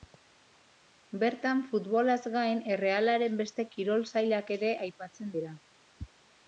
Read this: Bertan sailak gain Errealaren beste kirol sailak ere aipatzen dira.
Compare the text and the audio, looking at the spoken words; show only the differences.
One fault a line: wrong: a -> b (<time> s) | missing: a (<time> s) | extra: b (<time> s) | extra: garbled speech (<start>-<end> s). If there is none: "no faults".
wrong: sailak -> futbolaz (1.7 s)